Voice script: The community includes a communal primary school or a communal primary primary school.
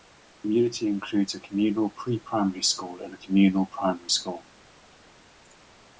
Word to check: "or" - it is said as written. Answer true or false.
false